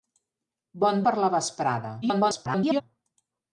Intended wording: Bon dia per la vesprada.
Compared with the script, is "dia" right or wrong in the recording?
wrong